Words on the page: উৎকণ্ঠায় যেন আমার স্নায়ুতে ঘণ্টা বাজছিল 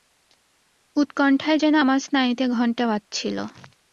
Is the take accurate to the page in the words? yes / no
yes